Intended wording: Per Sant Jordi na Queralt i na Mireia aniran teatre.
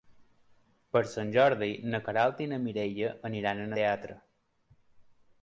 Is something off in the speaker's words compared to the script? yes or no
no